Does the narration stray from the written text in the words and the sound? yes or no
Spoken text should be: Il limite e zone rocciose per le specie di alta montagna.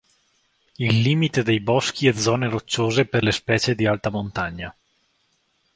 yes